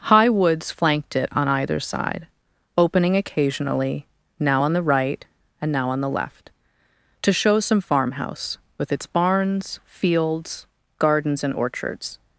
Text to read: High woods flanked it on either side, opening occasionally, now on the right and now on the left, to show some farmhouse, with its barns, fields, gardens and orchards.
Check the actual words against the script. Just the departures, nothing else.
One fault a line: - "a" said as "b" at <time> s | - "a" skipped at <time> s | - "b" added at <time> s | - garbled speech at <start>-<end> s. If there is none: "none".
none